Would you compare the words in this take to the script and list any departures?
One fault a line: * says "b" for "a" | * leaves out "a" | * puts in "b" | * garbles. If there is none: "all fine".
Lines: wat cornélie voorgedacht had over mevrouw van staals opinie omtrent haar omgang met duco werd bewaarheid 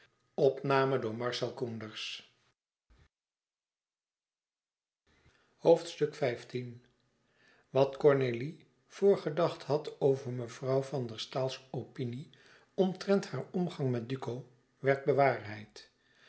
* puts in "der"